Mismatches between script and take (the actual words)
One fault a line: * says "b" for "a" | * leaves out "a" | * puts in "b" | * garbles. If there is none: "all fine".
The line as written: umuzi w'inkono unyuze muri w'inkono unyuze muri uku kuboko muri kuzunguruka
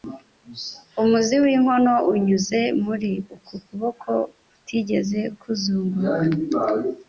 * leaves out "w'inkono unyuze muri"
* says "kutigeze" for "muri"